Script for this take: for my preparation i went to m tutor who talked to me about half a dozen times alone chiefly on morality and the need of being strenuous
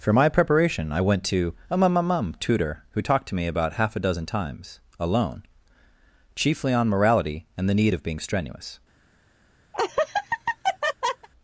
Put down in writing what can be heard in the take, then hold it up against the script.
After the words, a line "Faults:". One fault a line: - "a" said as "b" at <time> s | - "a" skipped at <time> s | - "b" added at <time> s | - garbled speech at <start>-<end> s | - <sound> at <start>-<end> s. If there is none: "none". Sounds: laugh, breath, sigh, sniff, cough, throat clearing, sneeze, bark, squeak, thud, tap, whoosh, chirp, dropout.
for my preparation i went to a mum mum mum tutor who talked to me about half a dozen times alone chiefly on morality and the need of being strenuous
Faults:
- "m" said as "a mum mum mum" at 1.7 s
- laugh at 9.7-11.3 s